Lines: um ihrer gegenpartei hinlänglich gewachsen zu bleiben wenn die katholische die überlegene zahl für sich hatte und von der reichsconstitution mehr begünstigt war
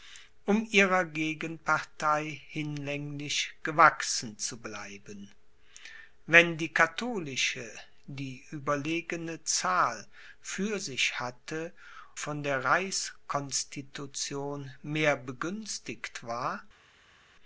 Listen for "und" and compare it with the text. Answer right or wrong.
wrong